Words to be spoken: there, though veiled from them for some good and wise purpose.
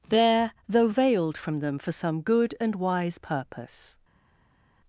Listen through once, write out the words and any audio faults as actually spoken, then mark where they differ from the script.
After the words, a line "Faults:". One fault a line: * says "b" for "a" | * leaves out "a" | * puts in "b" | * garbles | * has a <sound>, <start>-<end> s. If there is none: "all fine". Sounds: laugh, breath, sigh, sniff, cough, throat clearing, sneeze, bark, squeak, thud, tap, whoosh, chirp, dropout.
there, though veiled from them for some good and wise purpose.
Faults:
all fine